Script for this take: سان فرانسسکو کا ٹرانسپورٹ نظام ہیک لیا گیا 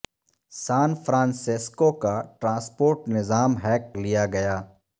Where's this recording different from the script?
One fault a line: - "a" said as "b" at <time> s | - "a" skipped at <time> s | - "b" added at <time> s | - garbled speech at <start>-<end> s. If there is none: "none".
none